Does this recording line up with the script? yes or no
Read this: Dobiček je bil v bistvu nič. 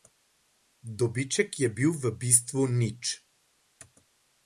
yes